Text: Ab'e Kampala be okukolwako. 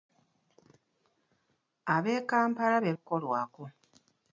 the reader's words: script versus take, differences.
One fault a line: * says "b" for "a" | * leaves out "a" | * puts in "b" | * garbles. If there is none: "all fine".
all fine